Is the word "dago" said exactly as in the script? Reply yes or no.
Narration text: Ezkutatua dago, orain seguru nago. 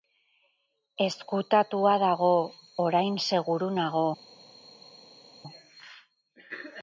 yes